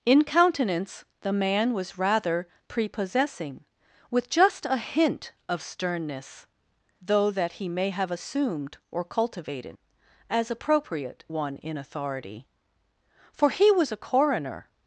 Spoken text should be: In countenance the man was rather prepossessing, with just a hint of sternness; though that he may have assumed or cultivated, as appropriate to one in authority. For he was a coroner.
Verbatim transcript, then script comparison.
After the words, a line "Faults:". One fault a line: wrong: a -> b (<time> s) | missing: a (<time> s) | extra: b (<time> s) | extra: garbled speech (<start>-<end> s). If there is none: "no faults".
In countenance the man was rather prepossessing, with just a hint of sternness; though that he may have assumed or cultivated, as appropriate one in authority. For he was a coroner.
Faults:
missing: to (11.2 s)